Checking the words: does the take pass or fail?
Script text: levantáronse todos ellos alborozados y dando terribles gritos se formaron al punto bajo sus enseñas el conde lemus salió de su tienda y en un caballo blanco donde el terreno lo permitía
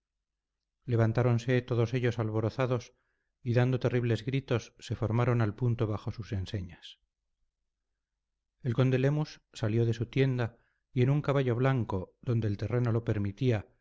pass